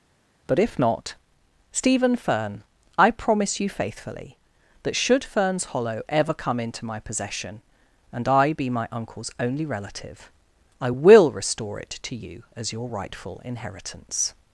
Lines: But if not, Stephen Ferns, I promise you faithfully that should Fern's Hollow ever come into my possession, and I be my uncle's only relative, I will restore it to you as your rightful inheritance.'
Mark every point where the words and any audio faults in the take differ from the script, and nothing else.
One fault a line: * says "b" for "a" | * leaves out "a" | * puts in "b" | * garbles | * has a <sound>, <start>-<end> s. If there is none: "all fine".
* says "Fern" for "Ferns"